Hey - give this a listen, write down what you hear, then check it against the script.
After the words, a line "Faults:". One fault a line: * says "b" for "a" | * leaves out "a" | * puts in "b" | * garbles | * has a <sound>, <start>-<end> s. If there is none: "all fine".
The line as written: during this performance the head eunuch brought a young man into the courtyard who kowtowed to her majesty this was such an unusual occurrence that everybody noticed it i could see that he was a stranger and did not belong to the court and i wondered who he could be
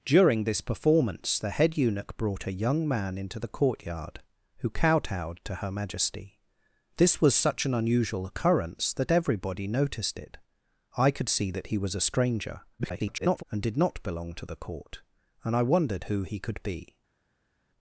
during this performance the head eunuch brought a young man into the courtyard who kowtowed to her majesty this was such an unusual occurrence that everybody noticed it i could see that he was a stranger [garbled] and did not belong to the court and i wondered who he could be
Faults:
* garbles